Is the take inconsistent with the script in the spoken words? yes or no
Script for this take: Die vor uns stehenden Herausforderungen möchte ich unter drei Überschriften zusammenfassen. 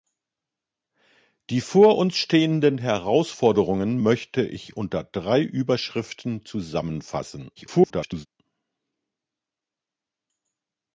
yes